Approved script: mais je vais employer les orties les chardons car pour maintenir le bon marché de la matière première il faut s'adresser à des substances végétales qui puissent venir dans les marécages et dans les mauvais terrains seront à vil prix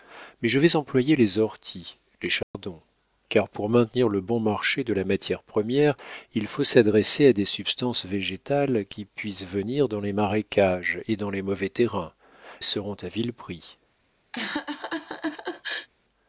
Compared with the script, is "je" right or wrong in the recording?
right